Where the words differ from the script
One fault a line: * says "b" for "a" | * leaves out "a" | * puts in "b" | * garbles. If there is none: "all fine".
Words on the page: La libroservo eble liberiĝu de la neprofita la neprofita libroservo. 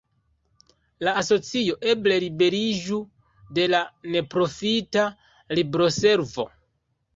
* says "asocio" for "libroservo"
* leaves out "la neprofita"